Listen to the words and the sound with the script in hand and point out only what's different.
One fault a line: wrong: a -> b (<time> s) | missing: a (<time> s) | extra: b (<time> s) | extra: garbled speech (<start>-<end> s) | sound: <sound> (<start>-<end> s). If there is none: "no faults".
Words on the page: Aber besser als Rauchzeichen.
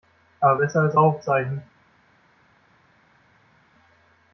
no faults